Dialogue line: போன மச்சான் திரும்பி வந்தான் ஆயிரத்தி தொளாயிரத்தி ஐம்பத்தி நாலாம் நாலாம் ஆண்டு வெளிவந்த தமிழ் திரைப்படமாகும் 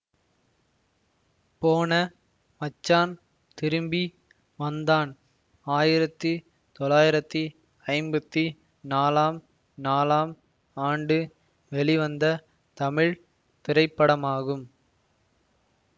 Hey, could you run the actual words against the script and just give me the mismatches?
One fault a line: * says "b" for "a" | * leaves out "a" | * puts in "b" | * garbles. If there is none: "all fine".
all fine